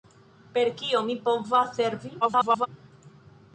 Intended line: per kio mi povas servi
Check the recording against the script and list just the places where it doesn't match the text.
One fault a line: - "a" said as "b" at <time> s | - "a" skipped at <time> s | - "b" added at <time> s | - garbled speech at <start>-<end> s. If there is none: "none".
- garbled speech at 2.2-2.7 s